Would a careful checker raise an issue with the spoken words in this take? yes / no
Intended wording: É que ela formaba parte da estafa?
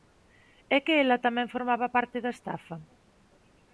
yes